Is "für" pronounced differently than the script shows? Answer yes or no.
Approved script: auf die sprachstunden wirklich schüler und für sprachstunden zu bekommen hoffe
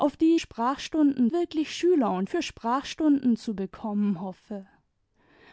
no